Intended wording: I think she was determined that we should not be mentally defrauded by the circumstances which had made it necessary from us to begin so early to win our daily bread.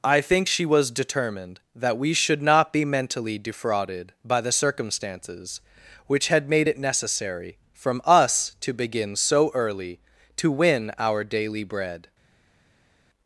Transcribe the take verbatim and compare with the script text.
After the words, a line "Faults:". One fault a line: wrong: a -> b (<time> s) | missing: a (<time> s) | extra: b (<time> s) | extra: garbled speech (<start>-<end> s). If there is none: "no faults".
I think she was determined that we should not be mentally defrauded by the circumstances which had made it necessary from us to begin so early to win our daily bread.
Faults:
no faults